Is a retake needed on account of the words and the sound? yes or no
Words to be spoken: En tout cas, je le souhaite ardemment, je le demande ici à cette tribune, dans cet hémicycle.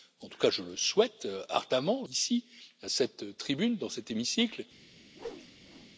yes